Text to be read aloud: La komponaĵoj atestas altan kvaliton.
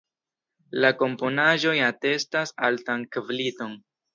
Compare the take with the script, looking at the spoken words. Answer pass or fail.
pass